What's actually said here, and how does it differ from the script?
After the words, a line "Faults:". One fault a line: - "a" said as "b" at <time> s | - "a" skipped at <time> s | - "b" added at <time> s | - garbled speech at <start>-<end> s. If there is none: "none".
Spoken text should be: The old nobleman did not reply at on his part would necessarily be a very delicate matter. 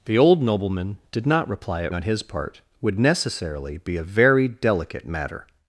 The old nobleman did not reply at on his part would necessarily be a very delicate matter.
Faults:
none